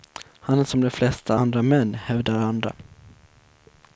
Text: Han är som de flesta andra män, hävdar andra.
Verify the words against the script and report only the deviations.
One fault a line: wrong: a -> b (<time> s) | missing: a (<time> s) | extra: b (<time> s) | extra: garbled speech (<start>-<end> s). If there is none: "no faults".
no faults